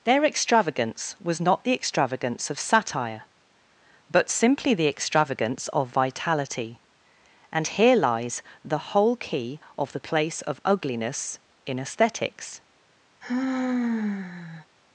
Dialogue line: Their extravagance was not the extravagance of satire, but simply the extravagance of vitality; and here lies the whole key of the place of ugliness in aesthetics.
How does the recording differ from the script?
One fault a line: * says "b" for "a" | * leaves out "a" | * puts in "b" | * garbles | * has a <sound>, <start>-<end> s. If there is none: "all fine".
* has a sigh, 13.2-14.7 s